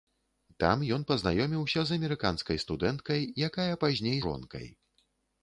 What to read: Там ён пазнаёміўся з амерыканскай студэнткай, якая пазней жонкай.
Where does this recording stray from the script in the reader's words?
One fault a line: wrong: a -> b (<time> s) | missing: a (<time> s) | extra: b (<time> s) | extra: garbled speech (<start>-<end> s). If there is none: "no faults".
no faults